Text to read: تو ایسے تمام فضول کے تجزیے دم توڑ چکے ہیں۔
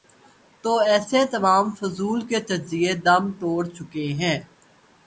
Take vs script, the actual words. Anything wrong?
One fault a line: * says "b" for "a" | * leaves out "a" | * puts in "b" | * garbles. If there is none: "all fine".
all fine